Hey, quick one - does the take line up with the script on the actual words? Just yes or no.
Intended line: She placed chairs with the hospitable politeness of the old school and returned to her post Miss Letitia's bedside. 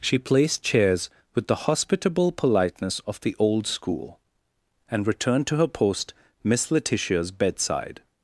yes